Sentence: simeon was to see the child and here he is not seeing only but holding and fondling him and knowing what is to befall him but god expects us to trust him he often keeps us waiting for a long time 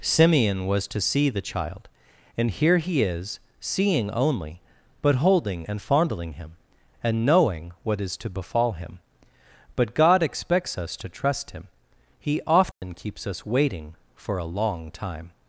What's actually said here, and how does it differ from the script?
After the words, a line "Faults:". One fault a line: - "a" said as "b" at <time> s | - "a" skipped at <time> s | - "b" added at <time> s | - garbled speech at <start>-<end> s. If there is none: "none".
simeon was to see the child and here he is seeing only but holding and fondling him and knowing what is to befall him but god expects us to trust him he often keeps us waiting for a long time
Faults:
- "not" skipped at 3.4 s